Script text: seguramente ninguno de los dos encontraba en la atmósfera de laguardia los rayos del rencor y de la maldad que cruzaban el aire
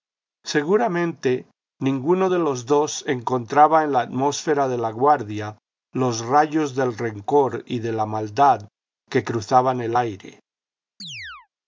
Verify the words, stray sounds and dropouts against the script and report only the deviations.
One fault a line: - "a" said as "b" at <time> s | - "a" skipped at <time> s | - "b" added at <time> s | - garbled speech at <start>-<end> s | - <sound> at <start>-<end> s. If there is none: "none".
- chirp at 11.0-11.5 s